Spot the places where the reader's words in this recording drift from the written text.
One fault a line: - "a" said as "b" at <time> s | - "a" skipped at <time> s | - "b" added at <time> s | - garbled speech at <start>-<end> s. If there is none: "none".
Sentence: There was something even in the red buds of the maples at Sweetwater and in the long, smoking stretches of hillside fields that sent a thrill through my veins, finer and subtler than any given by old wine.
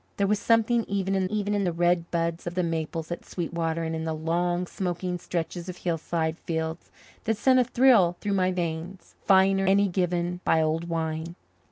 - "even in" added at 1.3 s
- "and subtler than" skipped at 9.7 s